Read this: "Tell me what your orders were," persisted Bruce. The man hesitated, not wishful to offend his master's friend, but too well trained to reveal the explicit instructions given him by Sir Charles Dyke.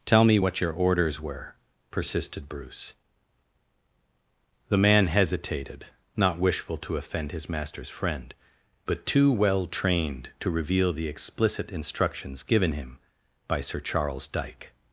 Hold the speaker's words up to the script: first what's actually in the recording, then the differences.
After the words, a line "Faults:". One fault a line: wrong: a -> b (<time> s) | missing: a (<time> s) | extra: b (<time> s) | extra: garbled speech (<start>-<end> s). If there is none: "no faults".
"Tell me what your orders were," persisted Bruce. The man hesitated, not wishful to offend his master's friend, but too well trained to reveal the explicit instructions given him by Sir Charles Dyke.
Faults:
no faults